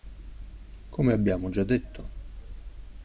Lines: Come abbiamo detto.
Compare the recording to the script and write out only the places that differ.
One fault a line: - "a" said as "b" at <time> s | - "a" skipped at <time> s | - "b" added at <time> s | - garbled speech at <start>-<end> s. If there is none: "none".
- "già" added at 1.5 s